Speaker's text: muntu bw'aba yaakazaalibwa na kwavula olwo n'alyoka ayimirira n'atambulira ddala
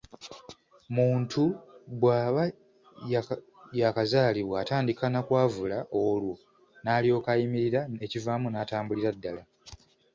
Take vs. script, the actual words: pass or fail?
fail